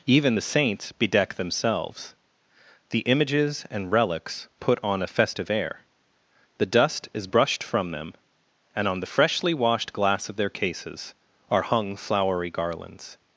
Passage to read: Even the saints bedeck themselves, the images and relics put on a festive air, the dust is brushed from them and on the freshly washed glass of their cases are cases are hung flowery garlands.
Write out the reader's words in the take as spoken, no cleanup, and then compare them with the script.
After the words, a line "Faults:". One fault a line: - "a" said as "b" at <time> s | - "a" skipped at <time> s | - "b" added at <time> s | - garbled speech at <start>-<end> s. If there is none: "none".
Even the saints bedeck themselves, the images and relics put on a festive air, the dust is brushed from them and on the freshly washed glass of their cases are hung flowery garlands.
Faults:
- "cases are" skipped at 11.6 s